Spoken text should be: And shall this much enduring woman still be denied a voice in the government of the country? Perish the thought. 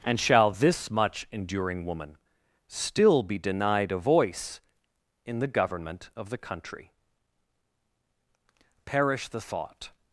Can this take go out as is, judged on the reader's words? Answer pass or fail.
pass